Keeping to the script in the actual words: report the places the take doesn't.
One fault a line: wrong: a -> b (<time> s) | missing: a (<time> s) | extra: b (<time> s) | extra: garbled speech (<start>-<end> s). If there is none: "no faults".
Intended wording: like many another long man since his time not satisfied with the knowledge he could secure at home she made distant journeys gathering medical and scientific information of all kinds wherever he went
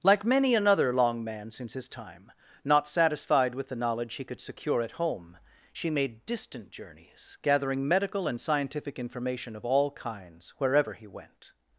no faults